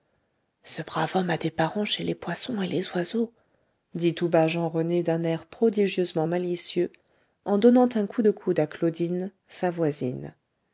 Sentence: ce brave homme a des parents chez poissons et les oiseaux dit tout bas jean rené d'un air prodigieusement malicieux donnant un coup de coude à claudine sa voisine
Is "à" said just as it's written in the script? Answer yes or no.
yes